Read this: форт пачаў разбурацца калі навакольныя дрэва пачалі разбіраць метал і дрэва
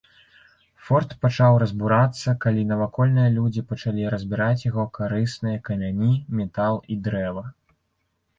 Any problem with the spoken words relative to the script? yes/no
yes